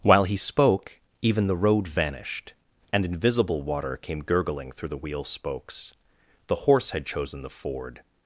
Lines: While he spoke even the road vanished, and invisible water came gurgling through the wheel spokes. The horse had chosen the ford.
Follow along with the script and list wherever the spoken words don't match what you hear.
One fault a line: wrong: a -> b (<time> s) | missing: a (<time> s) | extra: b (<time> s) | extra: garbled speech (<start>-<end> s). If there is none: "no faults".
no faults